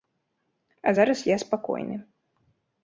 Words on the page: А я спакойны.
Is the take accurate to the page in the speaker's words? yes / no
no